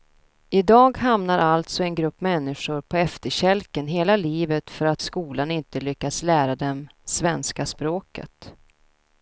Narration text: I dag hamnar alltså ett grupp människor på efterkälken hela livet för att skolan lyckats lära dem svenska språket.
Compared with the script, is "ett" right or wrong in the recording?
wrong